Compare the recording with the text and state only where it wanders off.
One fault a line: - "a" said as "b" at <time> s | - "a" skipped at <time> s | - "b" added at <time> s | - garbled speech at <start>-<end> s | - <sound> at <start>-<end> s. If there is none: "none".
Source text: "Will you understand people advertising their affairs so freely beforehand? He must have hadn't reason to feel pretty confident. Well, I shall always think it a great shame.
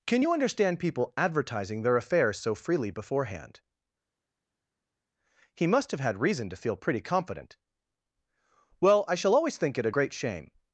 - "Will" said as "Can" at 0.1 s
- "hadn't" said as "had" at 6.0 s